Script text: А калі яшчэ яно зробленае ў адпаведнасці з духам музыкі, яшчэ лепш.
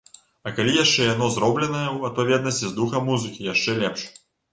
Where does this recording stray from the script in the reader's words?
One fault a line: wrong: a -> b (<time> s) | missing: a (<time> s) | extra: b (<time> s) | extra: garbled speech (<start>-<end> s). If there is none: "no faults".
no faults